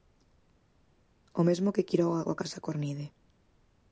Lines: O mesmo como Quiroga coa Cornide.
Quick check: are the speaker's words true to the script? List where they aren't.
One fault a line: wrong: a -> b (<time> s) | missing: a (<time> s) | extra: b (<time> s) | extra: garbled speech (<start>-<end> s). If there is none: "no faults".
wrong: como -> que (1.8 s)
extra: Casa (2.4 s)